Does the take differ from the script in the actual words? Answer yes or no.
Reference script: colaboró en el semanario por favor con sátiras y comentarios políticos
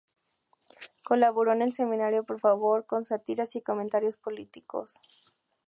no